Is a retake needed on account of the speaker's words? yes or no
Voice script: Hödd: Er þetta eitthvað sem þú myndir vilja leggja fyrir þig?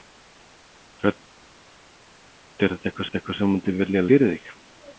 yes